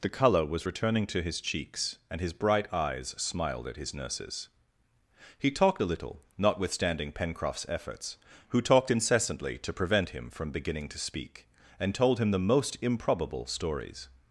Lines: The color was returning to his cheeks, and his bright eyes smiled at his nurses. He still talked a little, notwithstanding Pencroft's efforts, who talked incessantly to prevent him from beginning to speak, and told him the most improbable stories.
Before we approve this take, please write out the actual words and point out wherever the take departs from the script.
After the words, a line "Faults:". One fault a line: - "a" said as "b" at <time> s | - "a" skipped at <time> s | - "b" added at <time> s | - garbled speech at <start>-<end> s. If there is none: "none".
The color was returning to his cheeks, and his bright eyes smiled at his nurses. He talked a little, notwithstanding Pencroft's efforts, who talked incessantly to prevent him from beginning to speak, and told him the most improbable stories.
Faults:
- "still" skipped at 5.5 s